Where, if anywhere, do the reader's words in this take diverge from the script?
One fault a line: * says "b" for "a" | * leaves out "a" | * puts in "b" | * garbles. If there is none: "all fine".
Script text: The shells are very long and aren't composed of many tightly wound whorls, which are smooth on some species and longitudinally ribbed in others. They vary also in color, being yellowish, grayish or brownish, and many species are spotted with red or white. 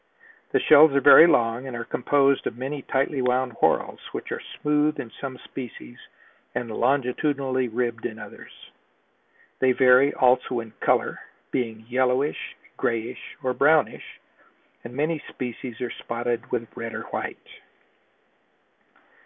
* says "are" for "aren't"
* says "in" for "on"